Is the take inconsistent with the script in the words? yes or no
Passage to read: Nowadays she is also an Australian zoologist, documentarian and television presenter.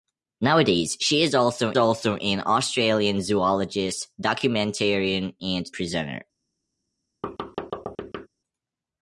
yes